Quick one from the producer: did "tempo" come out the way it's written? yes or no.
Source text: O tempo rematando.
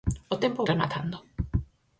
yes